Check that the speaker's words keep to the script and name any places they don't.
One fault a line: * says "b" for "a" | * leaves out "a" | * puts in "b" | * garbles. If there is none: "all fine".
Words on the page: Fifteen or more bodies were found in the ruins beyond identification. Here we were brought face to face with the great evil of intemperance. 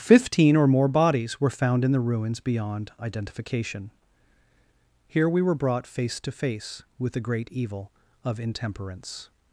all fine